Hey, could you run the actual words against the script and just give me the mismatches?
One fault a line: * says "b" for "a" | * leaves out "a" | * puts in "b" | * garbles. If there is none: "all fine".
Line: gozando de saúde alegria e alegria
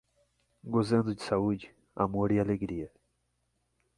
* says "amor" for "alegria"